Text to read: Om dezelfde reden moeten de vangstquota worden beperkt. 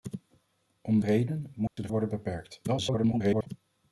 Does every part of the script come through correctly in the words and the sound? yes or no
no